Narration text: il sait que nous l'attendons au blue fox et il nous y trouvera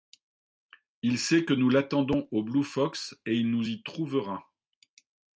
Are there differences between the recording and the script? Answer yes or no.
no